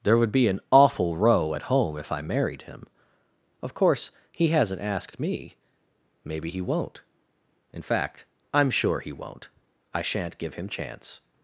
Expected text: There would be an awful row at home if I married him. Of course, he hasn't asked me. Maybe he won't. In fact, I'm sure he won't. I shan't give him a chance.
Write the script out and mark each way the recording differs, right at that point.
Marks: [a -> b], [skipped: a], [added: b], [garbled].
There would be an awful row at home if I married him. Of course, he hasn't asked me. Maybe he won't. In fact, I'm sure he won't. I shan't give him [skipped: a] chance.